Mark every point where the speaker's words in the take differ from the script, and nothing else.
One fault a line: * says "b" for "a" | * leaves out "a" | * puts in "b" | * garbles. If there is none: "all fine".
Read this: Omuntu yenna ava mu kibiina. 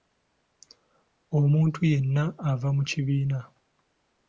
all fine